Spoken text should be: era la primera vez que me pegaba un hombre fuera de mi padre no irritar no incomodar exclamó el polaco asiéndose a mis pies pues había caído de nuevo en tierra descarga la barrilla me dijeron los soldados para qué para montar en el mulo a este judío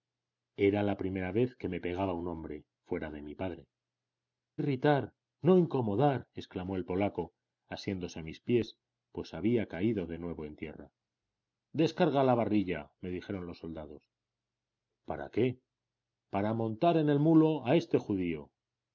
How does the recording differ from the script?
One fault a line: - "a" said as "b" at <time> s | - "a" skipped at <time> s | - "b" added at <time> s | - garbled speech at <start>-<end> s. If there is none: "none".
- "no" skipped at 3.7 s